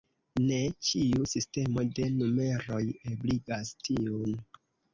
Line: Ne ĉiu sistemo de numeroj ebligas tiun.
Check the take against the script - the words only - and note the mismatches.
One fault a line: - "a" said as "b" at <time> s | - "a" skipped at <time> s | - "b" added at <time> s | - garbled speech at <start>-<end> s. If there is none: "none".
none